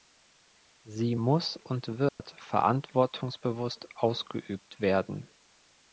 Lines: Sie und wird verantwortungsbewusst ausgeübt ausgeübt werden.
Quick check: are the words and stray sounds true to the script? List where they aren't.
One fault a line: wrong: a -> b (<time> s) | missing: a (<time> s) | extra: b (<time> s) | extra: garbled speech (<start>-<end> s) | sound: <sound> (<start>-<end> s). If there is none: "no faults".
extra: muss (1.1 s)
sound: dropout (2.1-2.2 s)
missing: ausgeübt (4.8 s)